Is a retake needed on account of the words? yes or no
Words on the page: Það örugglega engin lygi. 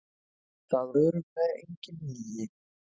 no